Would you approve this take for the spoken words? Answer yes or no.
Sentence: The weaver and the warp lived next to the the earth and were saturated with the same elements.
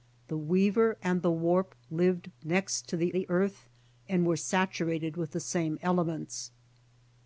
yes